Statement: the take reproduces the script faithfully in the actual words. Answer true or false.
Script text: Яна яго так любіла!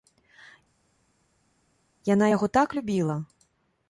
true